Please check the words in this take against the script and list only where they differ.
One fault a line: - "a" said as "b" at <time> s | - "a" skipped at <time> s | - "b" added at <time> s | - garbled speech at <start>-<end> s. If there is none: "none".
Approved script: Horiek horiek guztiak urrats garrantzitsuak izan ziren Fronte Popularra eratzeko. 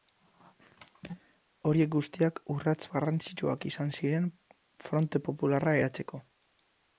- "horiek" skipped at 1.9 s